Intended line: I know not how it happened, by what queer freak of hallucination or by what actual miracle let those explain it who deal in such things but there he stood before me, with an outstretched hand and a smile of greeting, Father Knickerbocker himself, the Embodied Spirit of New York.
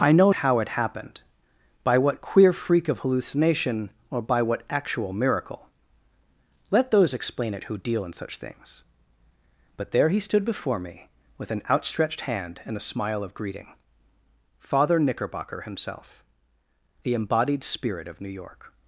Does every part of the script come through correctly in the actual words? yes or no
no